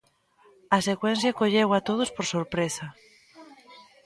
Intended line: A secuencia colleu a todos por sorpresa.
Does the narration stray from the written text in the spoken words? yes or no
no